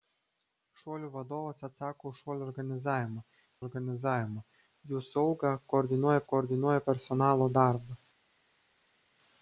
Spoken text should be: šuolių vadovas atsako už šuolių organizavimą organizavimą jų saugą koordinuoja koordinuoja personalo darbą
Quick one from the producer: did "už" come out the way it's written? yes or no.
yes